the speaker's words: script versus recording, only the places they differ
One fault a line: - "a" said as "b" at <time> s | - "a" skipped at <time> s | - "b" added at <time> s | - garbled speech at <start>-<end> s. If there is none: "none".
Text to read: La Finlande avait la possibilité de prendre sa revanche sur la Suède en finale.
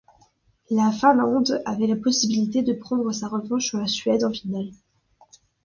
none